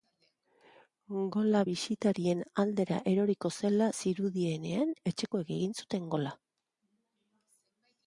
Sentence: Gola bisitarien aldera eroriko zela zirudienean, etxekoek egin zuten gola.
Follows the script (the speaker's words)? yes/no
yes